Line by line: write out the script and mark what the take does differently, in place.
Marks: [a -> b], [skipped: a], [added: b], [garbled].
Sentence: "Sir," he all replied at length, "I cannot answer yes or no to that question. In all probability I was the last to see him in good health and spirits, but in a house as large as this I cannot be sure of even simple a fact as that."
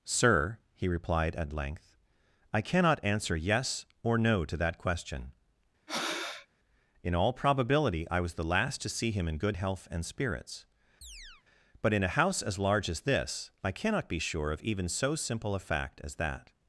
"Sir," he [skipped: all] replied at length, "I cannot answer yes or no to that question. In all probability I was the last to see him in good health and spirits, but in a house as large as this I cannot be sure of even [added: so] simple a fact as that."